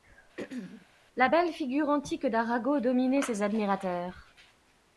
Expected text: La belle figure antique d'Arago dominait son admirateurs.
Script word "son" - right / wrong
wrong